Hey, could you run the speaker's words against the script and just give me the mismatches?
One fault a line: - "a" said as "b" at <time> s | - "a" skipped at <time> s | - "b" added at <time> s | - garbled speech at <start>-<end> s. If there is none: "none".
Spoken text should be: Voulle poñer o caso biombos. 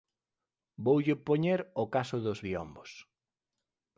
- "dos" added at 2.2 s